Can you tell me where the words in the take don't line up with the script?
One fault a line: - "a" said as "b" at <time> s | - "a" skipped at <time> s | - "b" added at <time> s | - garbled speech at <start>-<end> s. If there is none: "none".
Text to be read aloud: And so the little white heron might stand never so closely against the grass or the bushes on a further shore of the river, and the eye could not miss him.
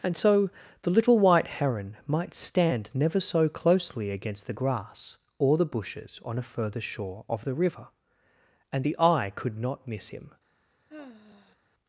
none